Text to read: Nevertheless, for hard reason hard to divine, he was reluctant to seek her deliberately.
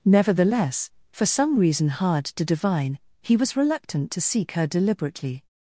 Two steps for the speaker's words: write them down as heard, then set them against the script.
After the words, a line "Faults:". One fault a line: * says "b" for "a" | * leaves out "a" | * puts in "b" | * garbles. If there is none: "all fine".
Nevertheless, for some reason hard to divine, he was reluctant to seek her deliberately.
Faults:
* says "some" for "hard"